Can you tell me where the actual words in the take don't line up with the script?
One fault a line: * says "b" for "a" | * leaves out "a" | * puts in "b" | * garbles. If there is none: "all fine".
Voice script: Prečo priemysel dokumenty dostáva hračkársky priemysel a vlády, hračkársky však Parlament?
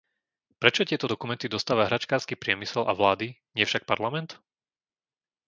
* says "tieto" for "priemysel"
* says "nie" for "hračkársky"